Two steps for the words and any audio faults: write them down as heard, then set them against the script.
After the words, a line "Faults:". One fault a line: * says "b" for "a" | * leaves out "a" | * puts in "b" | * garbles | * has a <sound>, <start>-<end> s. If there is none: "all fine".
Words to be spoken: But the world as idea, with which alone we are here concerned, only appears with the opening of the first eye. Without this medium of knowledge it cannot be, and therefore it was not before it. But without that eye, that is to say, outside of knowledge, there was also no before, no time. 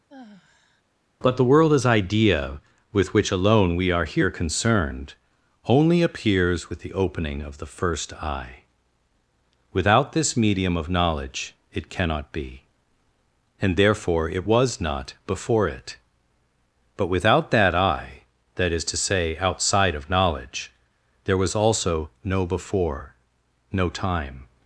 But the world as idea, with which alone we are here concerned, only appears with the opening of the first eye. Without this medium of knowledge it cannot be, and therefore it was not before it. But without that eye, that is to say, outside of knowledge, there was also no before, no time.
Faults:
* has a sigh, 0.1-0.8 s